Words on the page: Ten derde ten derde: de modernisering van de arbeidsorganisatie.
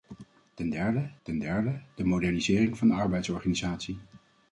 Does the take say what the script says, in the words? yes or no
yes